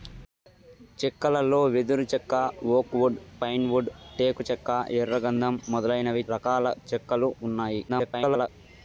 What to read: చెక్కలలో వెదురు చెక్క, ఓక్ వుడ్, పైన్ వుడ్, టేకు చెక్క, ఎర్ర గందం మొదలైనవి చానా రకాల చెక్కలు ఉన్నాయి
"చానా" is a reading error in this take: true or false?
true